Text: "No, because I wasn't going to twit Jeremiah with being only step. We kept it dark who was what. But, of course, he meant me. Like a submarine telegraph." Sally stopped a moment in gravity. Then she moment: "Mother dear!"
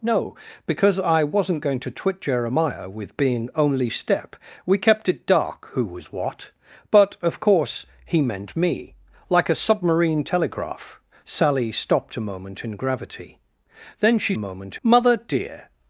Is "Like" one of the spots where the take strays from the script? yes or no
no